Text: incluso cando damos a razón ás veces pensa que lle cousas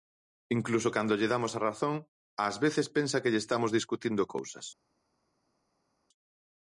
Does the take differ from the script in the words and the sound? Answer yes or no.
yes